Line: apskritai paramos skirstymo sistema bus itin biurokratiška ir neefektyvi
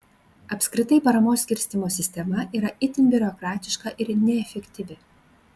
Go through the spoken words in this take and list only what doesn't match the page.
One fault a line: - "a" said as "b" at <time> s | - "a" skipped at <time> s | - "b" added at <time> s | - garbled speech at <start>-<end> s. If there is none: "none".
- "bus" said as "yra" at 2.6 s